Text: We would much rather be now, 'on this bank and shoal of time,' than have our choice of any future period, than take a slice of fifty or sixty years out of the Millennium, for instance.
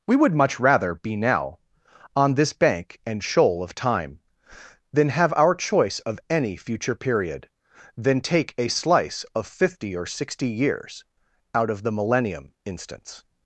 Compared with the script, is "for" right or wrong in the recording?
wrong